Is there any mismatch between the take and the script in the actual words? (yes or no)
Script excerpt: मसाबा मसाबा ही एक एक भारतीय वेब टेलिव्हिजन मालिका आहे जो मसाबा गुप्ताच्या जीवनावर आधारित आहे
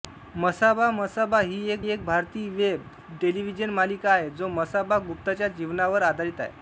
no